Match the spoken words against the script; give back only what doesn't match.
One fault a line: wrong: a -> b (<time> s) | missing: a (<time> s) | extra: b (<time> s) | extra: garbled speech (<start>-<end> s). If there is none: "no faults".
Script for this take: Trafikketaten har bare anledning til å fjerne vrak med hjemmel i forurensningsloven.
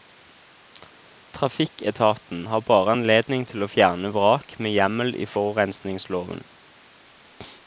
no faults